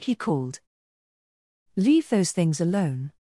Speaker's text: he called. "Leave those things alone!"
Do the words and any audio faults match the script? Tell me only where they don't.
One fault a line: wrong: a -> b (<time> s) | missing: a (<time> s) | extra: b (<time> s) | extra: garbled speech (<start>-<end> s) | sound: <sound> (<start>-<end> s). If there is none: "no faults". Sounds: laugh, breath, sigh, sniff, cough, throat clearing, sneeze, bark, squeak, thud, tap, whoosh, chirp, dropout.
no faults